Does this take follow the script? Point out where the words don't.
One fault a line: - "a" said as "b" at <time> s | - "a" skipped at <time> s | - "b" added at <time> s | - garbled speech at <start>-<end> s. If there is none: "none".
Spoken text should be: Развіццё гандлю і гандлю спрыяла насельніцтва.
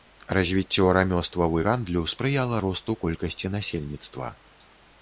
- "гандлю" said as "рамёстваў" at 1.0 s
- "росту колькасці" added at 2.7 s